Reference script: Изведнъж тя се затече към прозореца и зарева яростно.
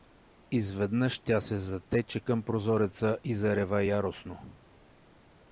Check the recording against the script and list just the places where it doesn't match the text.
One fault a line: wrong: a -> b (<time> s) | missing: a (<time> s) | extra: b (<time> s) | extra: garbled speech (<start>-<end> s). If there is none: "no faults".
no faults